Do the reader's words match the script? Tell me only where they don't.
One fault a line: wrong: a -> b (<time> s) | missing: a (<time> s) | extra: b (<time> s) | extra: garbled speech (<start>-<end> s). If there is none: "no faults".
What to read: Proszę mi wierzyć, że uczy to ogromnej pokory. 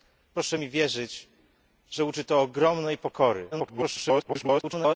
extra: garbled speech (3.5-5.0 s)